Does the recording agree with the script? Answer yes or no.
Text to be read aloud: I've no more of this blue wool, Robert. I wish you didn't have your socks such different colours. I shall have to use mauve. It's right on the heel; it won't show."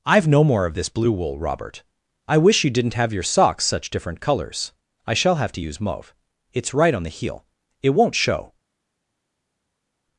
yes